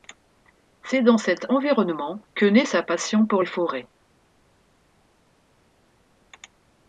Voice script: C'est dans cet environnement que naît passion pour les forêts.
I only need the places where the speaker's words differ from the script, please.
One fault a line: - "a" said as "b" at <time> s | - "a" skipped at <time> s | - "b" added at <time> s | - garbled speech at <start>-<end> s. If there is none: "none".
- "sa" added at 2.6 s